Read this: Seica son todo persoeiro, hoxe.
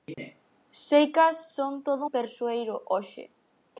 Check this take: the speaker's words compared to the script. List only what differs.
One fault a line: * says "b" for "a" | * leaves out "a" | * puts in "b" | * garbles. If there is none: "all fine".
all fine